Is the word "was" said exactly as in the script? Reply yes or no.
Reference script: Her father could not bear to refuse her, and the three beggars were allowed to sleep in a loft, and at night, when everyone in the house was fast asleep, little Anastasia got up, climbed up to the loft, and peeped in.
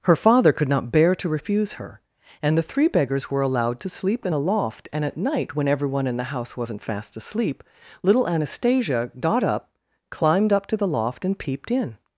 no